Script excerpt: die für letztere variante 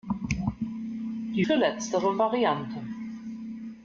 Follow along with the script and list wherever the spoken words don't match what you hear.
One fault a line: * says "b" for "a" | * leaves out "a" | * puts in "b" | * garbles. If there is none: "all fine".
all fine